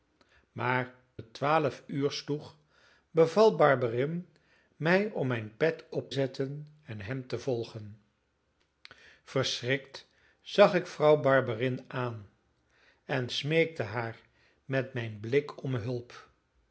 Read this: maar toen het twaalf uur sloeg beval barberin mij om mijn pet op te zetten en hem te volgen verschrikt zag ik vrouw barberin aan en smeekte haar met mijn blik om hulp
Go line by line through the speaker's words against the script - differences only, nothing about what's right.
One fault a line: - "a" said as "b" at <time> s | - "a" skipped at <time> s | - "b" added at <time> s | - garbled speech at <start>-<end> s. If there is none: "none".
- "toen" skipped at 0.9 s
- "te" skipped at 6.1 s